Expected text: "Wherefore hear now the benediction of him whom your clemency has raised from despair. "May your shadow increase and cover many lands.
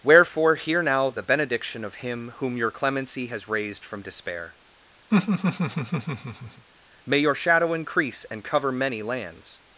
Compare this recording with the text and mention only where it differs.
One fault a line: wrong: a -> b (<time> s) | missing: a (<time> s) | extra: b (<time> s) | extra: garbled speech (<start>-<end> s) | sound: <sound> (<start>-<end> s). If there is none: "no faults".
sound: laugh (5.1-6.7 s)